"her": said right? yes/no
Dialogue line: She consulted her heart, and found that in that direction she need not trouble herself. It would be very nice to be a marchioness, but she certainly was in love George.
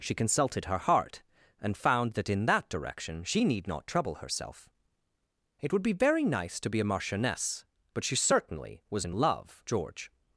yes